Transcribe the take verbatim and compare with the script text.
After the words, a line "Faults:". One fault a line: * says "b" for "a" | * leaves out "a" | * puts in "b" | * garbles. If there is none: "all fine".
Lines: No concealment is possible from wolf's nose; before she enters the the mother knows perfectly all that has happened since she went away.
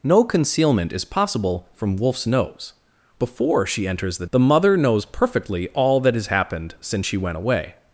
No concealment is possible from wolf's nose; before she enters the the mother knows perfectly all that has happened since she went away.
Faults:
all fine